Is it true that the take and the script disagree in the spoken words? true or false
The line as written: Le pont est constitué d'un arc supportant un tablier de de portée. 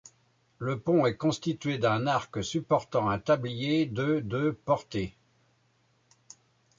false